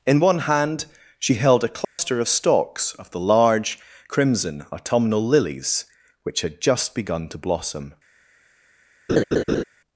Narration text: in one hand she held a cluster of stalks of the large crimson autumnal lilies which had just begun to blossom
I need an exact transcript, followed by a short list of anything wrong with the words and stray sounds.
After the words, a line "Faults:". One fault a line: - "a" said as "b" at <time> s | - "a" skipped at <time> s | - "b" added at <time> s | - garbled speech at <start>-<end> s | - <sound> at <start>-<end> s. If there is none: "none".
in one hand she held a cluster of stalks of the large crimson autumnal lilies which had just begun to blossom
Faults:
- dropout at 1.8-2.0 s
- laugh at 9.1-9.6 s